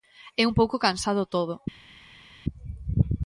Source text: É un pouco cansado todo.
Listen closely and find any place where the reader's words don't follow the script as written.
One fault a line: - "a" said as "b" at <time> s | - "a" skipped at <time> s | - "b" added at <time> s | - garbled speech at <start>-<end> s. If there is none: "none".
none